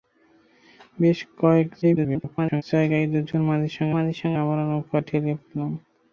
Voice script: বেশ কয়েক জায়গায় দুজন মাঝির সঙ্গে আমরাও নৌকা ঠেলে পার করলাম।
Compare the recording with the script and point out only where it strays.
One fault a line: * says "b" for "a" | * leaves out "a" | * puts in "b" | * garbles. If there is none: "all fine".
* garbles
* puts in "মাঝির সঙ্গে"
* leaves out "পার"